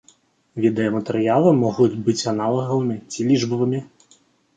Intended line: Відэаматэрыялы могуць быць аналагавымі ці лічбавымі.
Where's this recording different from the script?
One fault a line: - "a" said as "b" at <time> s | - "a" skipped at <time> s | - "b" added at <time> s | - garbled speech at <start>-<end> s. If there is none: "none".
none